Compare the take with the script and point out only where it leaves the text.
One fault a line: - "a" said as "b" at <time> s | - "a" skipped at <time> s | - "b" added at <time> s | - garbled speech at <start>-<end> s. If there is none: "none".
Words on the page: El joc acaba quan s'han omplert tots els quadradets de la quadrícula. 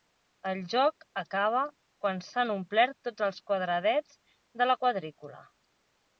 none